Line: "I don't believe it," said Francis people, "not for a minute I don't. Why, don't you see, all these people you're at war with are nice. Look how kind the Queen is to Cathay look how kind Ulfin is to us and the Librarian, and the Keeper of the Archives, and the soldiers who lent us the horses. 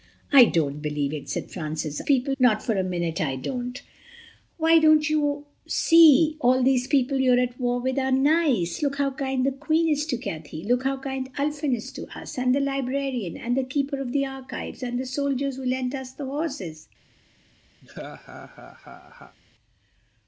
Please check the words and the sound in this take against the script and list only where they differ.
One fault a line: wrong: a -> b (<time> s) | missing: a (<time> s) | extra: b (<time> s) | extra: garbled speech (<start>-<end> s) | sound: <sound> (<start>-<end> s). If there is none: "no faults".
sound: laugh (17.8-19.4 s)